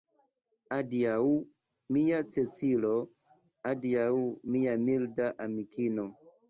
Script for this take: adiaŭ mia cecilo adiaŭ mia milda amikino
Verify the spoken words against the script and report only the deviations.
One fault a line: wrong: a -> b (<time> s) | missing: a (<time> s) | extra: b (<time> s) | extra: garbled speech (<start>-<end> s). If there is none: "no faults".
no faults